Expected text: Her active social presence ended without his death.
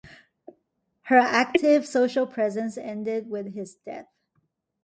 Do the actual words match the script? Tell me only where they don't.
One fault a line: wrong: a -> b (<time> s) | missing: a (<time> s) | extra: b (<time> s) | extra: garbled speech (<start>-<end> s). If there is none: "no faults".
wrong: without -> with (3.3 s)